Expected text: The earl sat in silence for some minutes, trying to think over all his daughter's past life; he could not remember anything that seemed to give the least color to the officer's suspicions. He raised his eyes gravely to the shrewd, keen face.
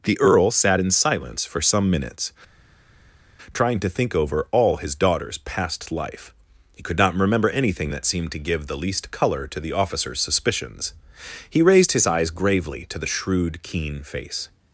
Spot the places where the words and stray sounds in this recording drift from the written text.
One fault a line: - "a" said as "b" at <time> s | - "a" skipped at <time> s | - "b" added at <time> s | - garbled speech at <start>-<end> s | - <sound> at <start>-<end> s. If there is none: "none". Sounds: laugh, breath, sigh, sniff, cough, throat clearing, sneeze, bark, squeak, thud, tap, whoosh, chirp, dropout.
none